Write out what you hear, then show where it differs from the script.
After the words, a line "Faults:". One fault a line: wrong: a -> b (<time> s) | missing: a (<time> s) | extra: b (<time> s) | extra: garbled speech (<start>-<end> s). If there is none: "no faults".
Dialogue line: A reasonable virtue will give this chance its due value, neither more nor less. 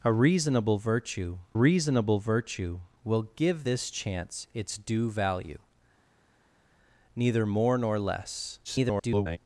A reasonable virtue reasonable virtue will give this chance its due value, neither more nor less. [garbled]
Faults:
extra: reasonable virtue (1.5 s)
extra: garbled speech (8.6-9.4 s)